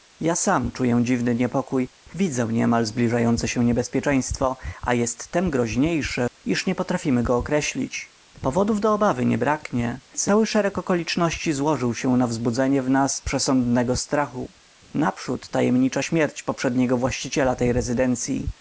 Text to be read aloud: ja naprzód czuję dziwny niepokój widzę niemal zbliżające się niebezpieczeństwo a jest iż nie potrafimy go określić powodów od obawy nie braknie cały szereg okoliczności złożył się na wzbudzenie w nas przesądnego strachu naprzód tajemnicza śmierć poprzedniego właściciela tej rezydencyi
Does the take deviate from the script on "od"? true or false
true